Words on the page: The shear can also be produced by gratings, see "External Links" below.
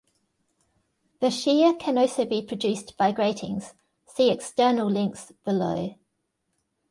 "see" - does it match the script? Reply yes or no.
yes